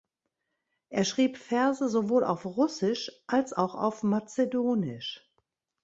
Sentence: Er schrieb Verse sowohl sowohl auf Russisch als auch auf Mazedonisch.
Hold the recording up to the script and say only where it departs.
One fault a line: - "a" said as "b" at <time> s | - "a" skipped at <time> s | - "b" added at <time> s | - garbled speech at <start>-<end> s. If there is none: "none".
- "sowohl" skipped at 2.2 s